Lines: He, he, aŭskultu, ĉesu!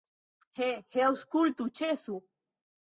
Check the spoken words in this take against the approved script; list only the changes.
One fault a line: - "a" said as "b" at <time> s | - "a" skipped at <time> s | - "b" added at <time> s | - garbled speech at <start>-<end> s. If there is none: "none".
none